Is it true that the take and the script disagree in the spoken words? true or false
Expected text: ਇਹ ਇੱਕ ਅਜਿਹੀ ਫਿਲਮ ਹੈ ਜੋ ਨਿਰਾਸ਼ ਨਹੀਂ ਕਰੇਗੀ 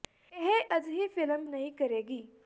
true